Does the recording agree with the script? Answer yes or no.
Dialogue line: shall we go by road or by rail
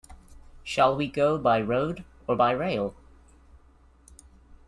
yes